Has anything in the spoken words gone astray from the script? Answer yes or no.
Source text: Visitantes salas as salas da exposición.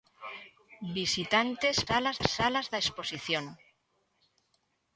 no